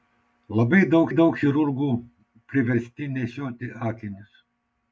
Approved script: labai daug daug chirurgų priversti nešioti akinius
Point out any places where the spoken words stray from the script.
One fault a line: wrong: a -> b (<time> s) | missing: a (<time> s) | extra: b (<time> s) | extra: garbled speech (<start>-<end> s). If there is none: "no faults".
no faults